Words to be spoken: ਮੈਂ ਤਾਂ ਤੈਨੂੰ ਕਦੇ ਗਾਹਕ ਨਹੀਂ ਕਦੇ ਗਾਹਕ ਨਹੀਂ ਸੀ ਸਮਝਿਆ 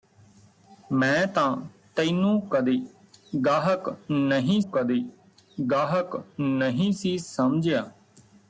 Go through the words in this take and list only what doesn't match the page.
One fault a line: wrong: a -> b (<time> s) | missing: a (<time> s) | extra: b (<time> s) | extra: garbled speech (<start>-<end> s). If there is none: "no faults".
no faults